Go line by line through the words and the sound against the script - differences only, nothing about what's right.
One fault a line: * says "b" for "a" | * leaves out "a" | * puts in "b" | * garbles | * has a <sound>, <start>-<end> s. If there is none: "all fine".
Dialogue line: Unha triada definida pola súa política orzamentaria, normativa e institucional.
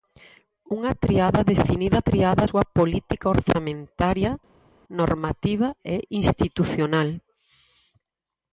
* says "triada" for "pola"